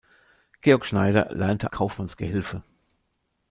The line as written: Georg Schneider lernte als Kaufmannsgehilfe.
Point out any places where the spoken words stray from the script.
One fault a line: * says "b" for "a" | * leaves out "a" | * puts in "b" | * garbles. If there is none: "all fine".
* leaves out "als"